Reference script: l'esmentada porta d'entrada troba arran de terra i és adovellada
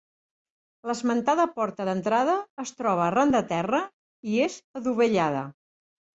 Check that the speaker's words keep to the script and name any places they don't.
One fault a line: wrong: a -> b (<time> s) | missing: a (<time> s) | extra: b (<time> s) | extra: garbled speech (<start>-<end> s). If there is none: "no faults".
extra: es (2.6 s)